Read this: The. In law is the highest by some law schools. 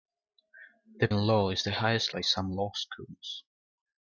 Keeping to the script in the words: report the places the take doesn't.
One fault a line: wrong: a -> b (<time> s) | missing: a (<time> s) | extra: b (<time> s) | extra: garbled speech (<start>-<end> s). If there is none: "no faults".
no faults